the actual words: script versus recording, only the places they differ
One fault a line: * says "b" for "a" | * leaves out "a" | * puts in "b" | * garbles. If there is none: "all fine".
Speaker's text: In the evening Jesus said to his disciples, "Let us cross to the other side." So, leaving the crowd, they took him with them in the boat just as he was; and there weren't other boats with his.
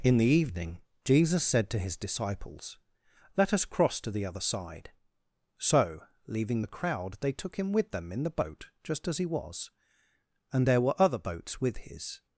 * says "were" for "weren't"